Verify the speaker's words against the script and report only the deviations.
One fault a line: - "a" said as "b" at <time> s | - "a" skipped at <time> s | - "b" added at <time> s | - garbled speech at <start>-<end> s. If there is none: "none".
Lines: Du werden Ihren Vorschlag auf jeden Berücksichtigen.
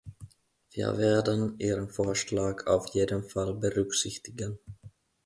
- "Du" said as "Wir" at 0.7 s
- "Fall" added at 3.2 s